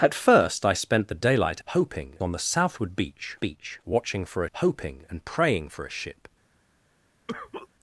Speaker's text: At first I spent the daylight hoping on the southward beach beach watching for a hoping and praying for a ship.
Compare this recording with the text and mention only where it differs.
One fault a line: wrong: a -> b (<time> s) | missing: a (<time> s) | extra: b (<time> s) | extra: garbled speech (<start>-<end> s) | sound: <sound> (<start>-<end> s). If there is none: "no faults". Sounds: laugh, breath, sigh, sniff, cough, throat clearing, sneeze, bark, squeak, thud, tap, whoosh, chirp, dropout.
sound: cough (7.3-7.7 s)